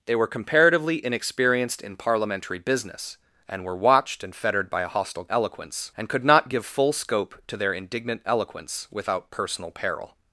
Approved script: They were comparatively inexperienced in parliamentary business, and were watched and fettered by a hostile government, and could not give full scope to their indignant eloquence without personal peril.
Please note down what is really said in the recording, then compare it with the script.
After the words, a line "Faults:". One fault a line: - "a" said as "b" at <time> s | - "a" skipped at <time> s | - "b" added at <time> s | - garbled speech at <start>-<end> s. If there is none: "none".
They were comparatively inexperienced in parliamentary business, and were watched and fettered by a hostile eloquence, and could not give full scope to their indignant eloquence without personal peril.
Faults:
- "government" said as "eloquence" at 5.3 s